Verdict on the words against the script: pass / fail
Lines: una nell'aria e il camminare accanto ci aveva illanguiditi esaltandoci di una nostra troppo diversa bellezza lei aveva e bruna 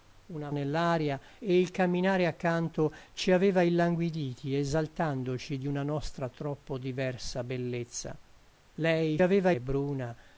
pass